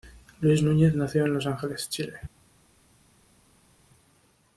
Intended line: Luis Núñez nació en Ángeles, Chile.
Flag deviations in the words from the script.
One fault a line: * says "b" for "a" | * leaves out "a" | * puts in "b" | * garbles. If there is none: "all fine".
* puts in "Los"